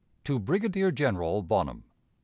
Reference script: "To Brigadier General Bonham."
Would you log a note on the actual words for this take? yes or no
no